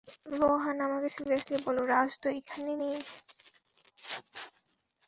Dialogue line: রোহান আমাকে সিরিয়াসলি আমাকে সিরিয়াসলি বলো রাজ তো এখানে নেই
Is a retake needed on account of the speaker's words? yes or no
yes